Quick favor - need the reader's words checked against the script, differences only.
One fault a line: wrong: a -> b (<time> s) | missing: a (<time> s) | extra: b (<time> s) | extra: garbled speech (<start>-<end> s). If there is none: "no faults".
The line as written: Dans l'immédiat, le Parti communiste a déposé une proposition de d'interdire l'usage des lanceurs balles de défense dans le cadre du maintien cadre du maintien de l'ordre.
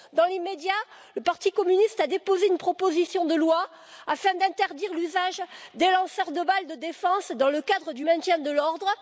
extra: loi afin (3.4 s)
extra: de (6.3 s)
missing: cadre du maintien (8.4 s)